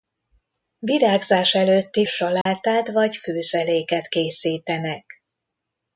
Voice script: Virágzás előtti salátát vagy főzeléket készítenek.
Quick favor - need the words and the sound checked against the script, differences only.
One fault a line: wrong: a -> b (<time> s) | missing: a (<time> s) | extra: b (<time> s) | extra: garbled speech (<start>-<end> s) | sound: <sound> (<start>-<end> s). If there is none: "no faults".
sound: dropout (2.4-2.5 s)